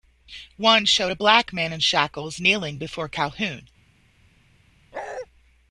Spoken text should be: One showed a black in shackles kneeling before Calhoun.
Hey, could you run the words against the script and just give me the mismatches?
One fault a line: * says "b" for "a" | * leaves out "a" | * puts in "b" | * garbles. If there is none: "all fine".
* puts in "man"